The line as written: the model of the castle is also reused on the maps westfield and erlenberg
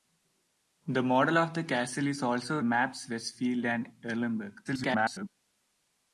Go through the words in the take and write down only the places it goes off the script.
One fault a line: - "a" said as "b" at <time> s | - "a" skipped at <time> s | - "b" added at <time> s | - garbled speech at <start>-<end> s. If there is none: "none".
- "reused on the" skipped at 2.6 s
- garbled speech at 4.6-5.3 s